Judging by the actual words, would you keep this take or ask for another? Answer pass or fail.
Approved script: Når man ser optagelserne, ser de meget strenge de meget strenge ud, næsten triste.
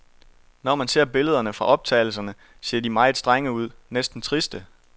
fail